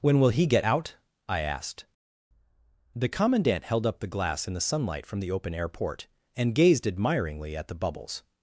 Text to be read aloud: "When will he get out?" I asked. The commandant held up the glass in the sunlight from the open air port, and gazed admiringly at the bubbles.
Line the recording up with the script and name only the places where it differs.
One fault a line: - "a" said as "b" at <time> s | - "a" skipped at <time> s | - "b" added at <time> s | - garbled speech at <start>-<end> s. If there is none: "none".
none